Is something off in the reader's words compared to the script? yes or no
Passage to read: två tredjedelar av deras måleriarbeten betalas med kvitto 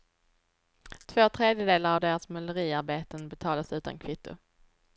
yes